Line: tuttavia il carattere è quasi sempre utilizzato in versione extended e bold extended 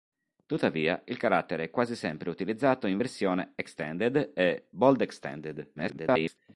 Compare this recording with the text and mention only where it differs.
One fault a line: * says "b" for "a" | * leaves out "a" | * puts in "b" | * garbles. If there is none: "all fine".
* garbles